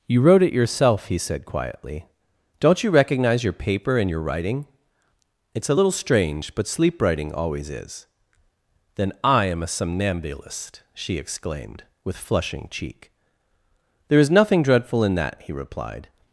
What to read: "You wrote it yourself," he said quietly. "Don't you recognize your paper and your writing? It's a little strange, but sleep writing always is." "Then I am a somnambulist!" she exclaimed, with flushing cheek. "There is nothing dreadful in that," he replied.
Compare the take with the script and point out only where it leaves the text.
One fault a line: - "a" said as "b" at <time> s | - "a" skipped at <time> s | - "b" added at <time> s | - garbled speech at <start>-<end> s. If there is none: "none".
none